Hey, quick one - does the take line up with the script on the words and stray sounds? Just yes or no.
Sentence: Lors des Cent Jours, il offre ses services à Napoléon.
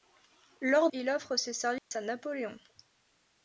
no